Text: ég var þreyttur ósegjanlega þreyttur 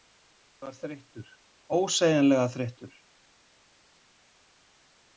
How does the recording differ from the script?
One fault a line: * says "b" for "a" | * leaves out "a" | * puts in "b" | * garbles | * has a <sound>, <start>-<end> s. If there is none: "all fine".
all fine